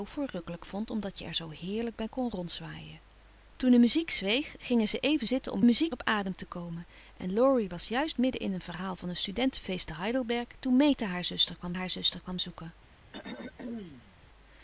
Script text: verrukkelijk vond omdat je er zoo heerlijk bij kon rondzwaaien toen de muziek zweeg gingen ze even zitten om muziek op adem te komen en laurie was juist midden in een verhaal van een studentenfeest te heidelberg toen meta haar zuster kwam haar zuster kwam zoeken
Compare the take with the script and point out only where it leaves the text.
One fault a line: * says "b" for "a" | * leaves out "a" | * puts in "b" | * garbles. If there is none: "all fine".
all fine